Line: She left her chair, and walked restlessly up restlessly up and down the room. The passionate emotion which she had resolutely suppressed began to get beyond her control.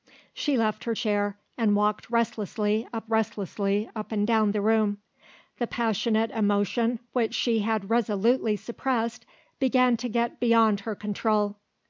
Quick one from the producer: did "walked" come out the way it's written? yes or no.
yes